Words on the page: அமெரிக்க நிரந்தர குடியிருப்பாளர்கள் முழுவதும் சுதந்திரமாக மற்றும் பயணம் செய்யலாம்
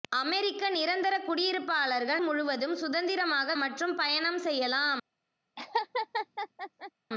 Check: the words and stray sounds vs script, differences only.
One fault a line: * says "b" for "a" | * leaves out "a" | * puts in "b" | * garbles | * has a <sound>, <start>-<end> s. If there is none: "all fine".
* has a laugh, 5.6-6.9 s